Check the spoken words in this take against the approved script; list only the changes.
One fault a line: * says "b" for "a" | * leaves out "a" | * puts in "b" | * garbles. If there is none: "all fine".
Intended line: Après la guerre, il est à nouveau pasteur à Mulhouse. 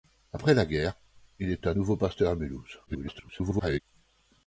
* garbles